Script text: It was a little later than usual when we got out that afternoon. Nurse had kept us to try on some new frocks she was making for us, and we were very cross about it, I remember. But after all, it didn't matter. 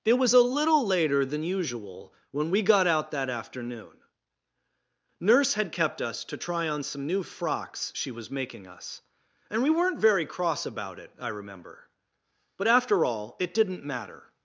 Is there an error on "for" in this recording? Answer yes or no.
yes